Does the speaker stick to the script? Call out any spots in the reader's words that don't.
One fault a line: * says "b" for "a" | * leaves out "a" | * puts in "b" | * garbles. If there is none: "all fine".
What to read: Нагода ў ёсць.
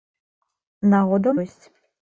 all fine